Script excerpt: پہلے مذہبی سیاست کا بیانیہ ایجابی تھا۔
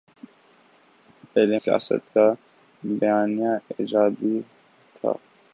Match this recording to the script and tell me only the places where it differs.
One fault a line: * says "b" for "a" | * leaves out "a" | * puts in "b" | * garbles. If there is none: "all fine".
* leaves out "مذہبی"